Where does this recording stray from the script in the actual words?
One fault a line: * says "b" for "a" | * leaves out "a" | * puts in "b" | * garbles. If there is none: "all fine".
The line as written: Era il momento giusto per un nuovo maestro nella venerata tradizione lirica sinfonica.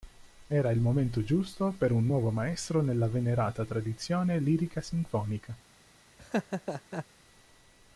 all fine